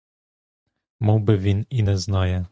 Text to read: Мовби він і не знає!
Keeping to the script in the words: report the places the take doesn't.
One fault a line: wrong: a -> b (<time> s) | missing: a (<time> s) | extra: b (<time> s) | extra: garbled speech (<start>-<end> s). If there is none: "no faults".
no faults